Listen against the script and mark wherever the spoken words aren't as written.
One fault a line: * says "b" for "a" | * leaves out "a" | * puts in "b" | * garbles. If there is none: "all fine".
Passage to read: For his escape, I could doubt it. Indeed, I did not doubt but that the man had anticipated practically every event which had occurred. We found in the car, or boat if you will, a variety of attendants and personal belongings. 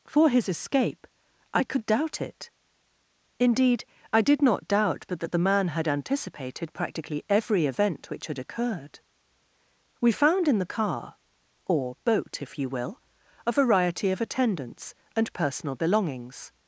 all fine